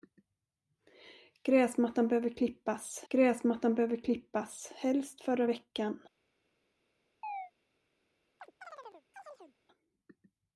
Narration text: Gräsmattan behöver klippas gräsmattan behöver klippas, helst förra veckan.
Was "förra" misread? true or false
false